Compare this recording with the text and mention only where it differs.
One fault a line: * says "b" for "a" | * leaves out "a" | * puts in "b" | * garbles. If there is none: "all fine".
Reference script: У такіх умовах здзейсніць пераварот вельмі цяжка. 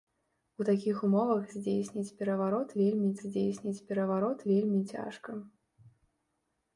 * puts in "здзейсніць пераварот вельмі"